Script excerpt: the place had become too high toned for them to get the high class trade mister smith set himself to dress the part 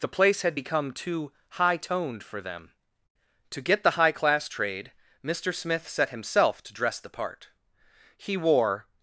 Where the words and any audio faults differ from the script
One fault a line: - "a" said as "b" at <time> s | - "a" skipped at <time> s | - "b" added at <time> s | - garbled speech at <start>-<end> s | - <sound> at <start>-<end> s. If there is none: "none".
- "he wore" added at 8.2 s